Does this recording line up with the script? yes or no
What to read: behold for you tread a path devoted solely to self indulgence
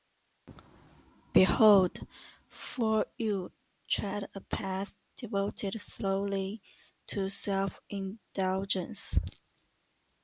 yes